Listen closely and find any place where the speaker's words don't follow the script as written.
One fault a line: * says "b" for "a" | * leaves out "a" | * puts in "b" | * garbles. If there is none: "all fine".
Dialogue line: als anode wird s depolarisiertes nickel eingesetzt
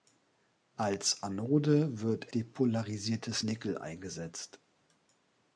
* leaves out "s"